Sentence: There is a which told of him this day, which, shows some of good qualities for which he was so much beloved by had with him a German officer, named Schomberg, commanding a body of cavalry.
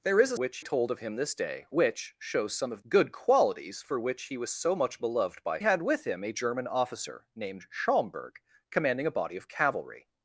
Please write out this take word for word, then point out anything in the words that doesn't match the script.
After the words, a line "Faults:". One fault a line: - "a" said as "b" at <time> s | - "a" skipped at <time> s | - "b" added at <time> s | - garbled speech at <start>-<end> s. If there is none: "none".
There is a which told of him this day, which, shows some of good qualities for which he was so much beloved by had with him a German officer, named Schomberg, commanding a body of cavalry.
Faults:
none